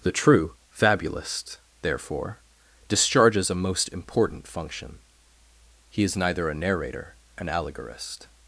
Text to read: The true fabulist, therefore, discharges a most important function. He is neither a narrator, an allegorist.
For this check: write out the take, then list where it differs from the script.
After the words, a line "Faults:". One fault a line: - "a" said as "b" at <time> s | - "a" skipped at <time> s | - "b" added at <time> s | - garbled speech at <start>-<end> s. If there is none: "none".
The true fabulist, therefore, discharges a most important function. He is neither a narrator, an allegorist.
Faults:
none